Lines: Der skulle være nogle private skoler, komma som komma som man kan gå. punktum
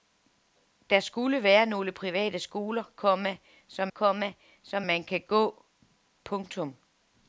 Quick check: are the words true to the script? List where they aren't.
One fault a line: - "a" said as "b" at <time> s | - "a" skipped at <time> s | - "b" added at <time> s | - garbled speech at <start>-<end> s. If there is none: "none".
none